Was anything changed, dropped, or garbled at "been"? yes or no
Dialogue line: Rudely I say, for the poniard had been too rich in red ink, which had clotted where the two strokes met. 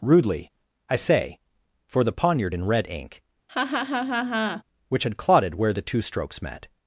yes